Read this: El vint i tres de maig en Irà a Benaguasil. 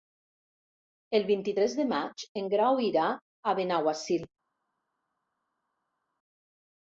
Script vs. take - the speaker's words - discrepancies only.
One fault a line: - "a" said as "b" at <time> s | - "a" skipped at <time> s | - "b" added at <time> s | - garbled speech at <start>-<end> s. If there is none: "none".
- "Grau" added at 2.6 s